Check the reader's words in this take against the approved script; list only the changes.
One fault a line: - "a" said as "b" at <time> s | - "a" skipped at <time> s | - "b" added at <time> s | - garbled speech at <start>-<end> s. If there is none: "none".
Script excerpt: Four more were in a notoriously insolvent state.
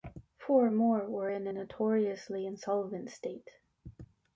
none